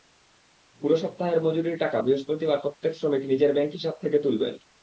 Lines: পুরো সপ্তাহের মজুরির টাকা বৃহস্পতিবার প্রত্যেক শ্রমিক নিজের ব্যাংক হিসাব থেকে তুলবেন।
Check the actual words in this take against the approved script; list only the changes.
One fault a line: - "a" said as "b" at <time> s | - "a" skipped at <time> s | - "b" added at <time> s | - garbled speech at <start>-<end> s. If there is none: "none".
none